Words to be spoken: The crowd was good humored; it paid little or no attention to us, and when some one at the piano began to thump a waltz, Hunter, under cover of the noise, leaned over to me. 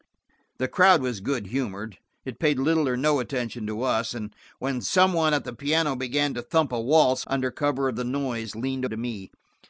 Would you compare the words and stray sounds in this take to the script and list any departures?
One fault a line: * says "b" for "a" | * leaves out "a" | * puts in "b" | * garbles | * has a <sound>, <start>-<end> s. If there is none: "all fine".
* leaves out "Hunter"
* leaves out "over"